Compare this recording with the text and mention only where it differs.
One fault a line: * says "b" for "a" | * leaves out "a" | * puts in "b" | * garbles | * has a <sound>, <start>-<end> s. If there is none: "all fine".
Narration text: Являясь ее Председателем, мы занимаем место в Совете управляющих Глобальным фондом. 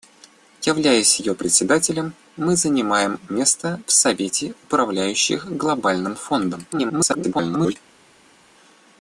* garbles